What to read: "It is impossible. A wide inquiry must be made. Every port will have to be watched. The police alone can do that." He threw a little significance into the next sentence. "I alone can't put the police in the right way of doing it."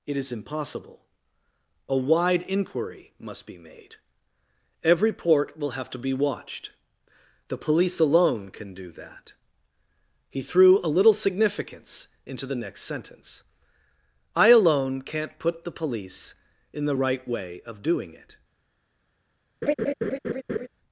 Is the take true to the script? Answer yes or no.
yes